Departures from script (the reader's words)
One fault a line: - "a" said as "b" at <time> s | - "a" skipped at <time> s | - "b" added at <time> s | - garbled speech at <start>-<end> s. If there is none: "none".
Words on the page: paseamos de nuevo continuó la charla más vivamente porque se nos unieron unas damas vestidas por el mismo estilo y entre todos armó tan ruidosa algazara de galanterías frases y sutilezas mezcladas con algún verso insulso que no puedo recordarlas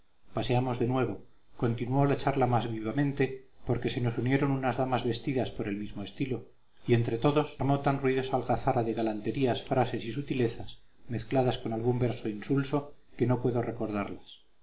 none